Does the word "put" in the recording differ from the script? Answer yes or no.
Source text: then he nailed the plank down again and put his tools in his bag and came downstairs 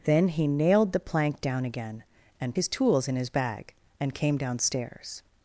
yes